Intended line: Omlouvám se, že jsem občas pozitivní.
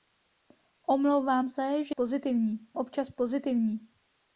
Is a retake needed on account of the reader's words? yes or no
yes